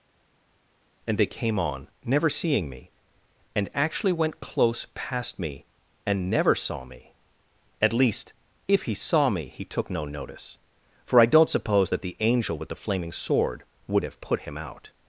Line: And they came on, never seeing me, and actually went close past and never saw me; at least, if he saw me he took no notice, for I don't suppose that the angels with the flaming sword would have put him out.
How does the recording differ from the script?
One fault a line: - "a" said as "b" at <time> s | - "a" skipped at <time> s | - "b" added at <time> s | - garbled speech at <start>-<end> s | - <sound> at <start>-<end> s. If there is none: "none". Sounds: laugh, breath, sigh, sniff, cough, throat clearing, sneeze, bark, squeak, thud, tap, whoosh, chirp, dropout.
- "me" added at 5.4 s
- "angels" said as "angel" at 12.2 s